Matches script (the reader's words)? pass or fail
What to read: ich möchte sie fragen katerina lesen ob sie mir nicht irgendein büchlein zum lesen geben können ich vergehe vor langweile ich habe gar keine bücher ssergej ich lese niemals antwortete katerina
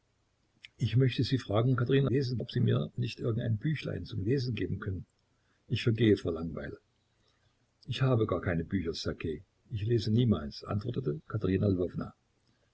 pass